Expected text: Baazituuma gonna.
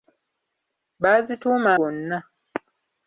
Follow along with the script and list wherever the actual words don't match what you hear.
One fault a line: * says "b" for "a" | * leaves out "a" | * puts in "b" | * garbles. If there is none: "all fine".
all fine